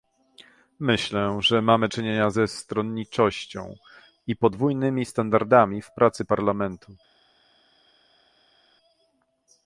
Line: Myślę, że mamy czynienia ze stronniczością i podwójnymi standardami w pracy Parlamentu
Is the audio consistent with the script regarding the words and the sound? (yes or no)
yes